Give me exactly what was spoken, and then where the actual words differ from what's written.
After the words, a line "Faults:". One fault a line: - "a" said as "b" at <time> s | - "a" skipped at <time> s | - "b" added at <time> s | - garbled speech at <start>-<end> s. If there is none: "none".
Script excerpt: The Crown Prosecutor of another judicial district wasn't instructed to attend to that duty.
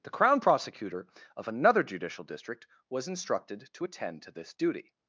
The Crown Prosecutor of another judicial district was instructed to attend to this duty.
Faults:
- "wasn't" said as "was" at 2.9 s
- "that" said as "this" at 4.3 s